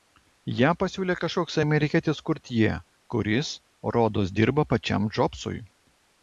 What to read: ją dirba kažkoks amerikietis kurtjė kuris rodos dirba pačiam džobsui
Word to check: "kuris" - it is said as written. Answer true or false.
true